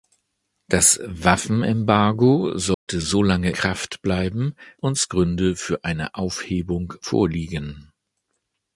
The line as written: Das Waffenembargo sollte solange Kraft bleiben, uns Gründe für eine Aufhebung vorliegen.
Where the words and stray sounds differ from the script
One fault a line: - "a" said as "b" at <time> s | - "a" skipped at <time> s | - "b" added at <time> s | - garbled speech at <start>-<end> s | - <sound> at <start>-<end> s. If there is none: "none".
- dropout at 2.7-2.9 s